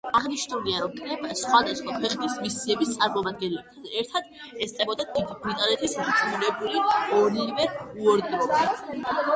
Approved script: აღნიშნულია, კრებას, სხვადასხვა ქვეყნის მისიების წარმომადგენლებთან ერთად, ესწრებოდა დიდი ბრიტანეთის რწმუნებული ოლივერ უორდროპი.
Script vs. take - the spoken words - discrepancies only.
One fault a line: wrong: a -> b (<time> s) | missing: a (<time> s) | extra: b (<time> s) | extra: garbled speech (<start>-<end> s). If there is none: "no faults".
extra: რომ (0.8 s)